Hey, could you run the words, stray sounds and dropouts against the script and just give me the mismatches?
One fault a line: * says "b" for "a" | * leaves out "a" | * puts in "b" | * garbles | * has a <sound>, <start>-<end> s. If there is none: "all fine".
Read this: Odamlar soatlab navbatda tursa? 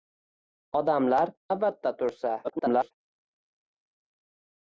* leaves out "soatlab"
* garbles